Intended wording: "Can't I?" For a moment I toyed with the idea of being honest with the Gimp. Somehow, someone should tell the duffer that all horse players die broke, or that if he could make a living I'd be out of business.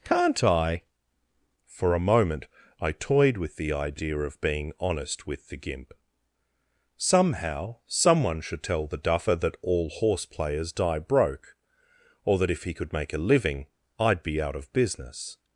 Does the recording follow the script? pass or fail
pass